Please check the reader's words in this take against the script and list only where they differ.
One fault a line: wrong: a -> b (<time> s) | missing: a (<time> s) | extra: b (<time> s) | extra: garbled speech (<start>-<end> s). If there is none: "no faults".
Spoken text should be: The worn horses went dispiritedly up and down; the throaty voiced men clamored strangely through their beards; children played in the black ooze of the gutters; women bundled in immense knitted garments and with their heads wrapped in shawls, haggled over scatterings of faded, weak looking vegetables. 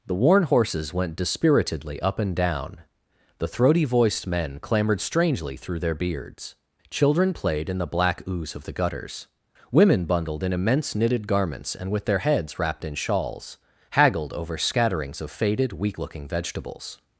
no faults